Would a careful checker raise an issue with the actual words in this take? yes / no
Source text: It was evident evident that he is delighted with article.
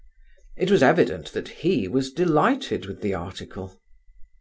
yes